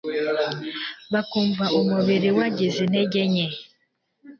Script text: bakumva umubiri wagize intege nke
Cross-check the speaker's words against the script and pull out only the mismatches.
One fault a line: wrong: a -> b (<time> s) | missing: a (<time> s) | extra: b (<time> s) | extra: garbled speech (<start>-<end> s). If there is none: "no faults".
no faults